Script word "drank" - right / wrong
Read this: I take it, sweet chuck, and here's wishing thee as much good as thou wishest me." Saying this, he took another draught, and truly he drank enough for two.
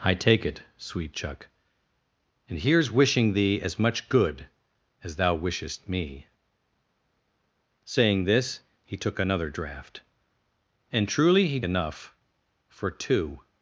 wrong